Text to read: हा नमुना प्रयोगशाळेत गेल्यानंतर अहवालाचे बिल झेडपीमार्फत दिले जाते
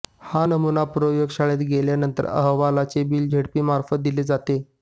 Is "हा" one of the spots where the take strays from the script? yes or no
no